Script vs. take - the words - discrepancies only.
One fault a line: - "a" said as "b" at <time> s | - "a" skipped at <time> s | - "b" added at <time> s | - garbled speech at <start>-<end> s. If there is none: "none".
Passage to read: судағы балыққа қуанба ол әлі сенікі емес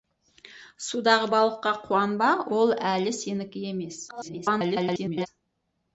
- garbled speech at 4.1-5.3 s